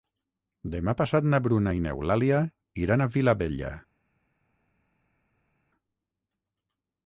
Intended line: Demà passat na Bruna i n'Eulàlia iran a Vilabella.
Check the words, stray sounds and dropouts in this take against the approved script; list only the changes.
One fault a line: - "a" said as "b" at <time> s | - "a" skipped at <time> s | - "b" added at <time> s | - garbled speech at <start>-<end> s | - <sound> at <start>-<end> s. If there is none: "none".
none